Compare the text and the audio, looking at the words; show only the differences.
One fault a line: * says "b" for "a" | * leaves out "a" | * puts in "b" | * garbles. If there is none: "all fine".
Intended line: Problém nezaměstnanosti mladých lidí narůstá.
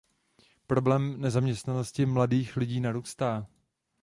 all fine